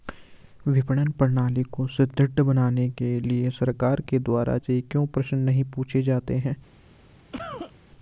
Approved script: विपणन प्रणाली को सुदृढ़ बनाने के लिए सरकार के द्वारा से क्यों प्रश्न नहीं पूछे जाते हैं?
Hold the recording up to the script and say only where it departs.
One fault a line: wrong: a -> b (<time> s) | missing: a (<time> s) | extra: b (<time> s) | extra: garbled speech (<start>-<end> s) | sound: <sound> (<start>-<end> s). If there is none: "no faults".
sound: cough (7.3-7.7 s)